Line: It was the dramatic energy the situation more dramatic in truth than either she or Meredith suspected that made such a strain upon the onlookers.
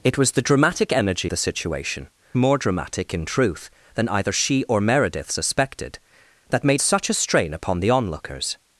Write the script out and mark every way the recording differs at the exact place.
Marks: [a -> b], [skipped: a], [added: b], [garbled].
It was the dramatic energy the situation more dramatic in truth than either she or Meredith suspected that made such a strain upon the onlookers.